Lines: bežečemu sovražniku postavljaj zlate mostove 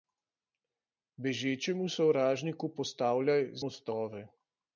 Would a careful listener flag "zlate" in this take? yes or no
yes